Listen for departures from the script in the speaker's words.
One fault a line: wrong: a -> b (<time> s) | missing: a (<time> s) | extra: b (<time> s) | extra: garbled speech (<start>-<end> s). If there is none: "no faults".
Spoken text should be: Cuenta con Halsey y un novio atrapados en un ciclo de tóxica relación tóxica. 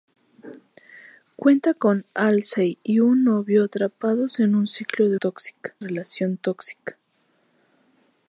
no faults